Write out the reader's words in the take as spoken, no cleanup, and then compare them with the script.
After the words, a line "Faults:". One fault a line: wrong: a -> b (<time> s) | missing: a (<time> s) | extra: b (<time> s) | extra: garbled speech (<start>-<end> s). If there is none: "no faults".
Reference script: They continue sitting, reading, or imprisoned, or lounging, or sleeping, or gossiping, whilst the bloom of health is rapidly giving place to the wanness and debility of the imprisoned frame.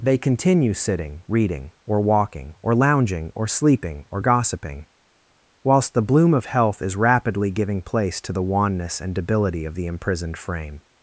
They continue sitting, reading, or walking, or lounging, or sleeping, or gossiping, whilst the bloom of health is rapidly giving place to the wanness and debility of the imprisoned frame.
Faults:
wrong: imprisoned -> walking (2.0 s)